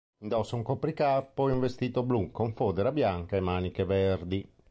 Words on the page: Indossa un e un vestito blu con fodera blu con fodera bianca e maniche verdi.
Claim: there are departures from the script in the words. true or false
true